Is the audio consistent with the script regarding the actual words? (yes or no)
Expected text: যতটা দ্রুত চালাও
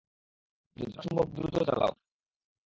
no